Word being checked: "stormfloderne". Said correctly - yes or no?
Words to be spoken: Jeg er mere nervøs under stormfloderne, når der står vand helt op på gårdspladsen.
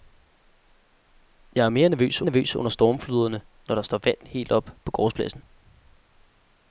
yes